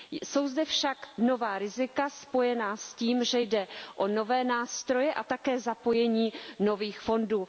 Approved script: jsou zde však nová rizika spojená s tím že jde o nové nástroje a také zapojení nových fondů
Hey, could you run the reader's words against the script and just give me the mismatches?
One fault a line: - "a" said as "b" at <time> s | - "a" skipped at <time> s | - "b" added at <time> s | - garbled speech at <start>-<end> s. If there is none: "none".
none